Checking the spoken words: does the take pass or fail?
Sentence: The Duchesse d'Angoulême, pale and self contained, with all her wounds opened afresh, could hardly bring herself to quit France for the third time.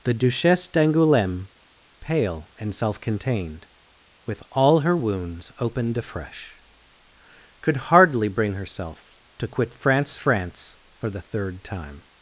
fail